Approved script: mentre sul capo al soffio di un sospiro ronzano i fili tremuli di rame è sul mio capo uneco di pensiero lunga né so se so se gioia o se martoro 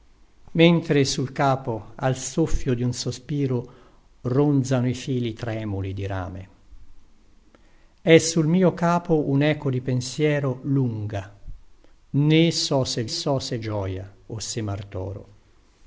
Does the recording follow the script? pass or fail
pass